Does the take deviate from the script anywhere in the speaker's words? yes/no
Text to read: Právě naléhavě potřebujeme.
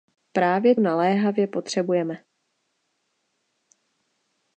no